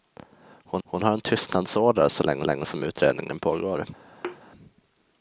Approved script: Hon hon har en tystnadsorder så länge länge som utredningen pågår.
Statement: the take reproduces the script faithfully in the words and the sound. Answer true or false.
false